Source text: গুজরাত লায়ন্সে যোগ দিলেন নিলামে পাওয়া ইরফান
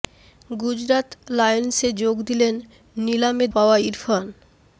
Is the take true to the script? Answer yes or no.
yes